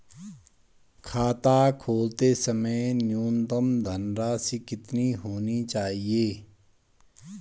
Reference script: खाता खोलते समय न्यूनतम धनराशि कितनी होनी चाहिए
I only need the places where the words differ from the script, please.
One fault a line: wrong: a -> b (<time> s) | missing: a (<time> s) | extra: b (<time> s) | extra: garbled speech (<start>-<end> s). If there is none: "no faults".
no faults